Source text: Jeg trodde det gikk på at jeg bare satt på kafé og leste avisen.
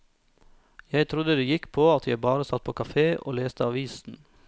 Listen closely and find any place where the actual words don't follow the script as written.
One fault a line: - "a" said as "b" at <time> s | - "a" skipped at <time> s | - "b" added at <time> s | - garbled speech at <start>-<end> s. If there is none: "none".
none